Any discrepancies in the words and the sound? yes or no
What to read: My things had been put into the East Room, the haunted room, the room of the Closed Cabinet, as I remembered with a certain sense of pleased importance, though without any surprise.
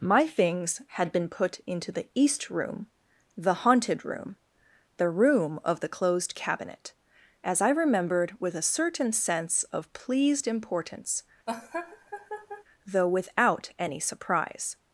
yes